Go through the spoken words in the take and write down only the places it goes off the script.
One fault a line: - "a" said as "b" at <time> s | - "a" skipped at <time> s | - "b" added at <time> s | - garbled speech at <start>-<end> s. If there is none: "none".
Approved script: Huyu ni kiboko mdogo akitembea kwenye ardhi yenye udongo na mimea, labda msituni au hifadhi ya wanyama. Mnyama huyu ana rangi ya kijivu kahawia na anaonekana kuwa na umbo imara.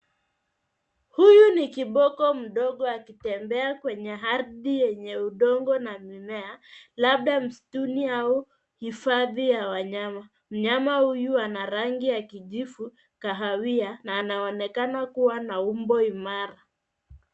none